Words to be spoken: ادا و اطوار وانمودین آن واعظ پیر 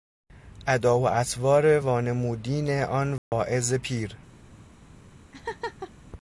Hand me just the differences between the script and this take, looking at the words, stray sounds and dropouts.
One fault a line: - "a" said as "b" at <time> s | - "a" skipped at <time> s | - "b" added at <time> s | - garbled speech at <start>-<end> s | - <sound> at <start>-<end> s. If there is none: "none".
- dropout at 3.2-3.3 s
- laugh at 5.3-5.9 s